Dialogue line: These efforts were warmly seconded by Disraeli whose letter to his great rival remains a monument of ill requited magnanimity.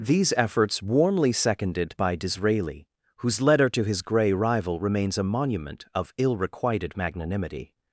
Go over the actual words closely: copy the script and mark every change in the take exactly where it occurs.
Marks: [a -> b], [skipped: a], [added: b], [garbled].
These efforts [skipped: were] warmly seconded by Disraeli whose letter to his [great -> grey] rival remains a monument of ill requited magnanimity.